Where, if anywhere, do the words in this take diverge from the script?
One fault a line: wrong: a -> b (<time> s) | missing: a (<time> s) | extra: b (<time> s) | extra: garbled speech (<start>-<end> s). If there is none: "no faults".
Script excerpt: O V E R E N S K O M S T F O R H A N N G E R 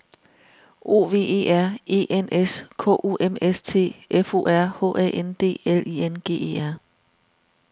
extra: D L I (5.4 s)